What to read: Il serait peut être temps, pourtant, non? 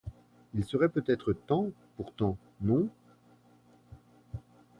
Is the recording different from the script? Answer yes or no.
no